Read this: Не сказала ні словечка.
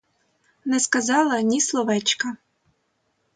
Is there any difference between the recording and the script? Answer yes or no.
no